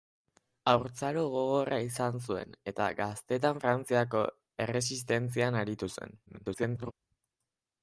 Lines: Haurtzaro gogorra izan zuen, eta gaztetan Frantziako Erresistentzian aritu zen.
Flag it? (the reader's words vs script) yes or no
yes